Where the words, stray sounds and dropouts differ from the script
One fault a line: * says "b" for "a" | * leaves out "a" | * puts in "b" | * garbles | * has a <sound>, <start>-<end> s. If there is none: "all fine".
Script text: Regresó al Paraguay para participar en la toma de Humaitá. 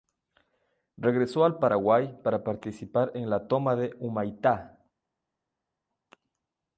all fine